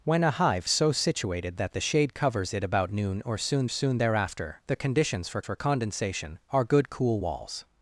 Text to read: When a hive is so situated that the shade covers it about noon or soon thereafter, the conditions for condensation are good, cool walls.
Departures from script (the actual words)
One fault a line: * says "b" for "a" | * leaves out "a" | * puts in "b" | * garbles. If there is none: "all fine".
* leaves out "is"
* puts in "soon"
* puts in "for"